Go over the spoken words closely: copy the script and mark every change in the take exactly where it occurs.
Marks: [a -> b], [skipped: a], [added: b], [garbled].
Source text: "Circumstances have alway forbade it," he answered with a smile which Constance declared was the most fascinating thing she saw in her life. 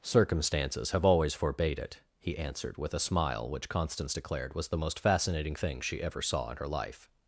"Circumstances have [alway -> always] forbade it," he answered with a smile which Constance declared was the most fascinating thing she [added: ever] saw in her life.